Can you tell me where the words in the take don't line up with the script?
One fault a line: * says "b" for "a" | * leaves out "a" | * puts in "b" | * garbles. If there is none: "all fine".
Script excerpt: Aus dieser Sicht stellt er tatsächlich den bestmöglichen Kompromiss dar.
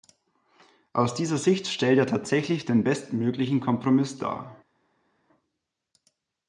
all fine